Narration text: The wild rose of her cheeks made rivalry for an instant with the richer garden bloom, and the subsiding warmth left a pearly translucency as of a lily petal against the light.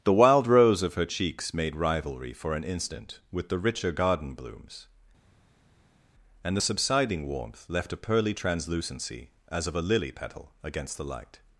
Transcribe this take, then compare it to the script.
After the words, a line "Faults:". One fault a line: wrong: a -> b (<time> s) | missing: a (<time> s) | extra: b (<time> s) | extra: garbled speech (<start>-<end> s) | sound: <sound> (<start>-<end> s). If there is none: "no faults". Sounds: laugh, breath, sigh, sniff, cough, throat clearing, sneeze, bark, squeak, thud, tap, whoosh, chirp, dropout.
The wild rose of her cheeks made rivalry for an instant with the richer garden blooms, and the subsiding warmth left a pearly translucency as of a lily petal against the light.
Faults:
wrong: bloom -> blooms (4.3 s)